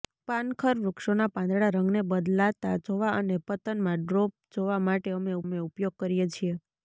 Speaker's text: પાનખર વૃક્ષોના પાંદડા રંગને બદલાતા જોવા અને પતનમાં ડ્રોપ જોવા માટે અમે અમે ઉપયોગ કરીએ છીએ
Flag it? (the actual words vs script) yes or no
no